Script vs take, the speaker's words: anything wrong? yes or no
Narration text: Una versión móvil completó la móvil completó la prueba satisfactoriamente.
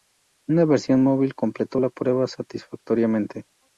yes